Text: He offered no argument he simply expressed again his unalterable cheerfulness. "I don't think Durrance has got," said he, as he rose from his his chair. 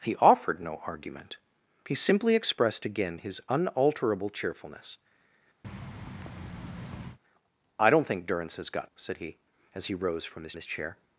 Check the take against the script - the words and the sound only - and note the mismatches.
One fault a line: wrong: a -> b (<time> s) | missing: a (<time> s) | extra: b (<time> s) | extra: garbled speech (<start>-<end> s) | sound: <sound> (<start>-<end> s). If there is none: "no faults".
sound: thud (5.6-7.2 s)